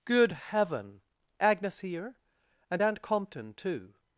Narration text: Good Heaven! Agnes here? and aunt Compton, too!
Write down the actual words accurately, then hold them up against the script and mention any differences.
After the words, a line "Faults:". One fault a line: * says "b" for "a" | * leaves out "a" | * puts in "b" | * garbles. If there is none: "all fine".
Good Heaven! Agnes here? and aunt Compton, too!
Faults:
all fine